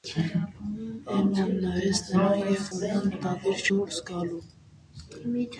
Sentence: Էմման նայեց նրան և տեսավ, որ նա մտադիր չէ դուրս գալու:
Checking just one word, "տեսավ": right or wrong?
wrong